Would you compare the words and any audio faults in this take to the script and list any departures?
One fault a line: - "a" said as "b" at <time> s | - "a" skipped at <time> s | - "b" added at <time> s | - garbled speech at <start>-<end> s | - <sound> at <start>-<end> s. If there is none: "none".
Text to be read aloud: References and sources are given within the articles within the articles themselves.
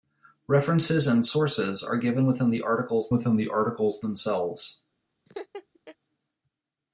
- laugh at 5.3-6.0 s